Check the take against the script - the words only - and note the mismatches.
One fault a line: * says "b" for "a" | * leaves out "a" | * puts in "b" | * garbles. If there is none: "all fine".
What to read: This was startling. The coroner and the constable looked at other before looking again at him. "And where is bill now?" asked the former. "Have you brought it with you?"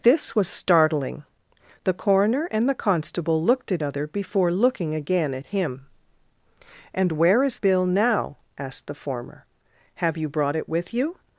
all fine